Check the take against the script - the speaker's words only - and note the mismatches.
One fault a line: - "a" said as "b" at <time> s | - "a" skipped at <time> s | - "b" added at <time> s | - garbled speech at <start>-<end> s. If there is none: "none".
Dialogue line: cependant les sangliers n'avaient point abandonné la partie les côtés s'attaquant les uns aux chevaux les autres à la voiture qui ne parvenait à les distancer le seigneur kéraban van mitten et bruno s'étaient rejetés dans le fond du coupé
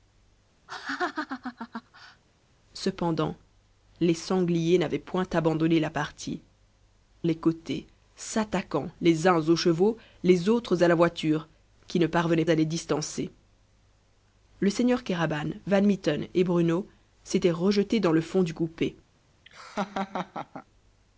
none